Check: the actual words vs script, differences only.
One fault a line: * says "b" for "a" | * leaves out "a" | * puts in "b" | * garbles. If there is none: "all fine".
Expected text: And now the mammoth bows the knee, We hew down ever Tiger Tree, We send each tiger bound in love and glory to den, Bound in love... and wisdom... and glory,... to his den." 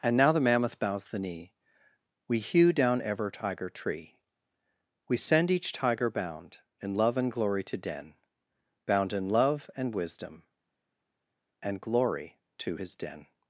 all fine